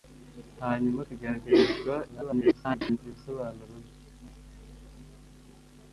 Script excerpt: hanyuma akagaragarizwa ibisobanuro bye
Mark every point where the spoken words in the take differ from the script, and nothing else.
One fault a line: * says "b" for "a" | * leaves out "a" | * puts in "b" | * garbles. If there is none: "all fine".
* garbles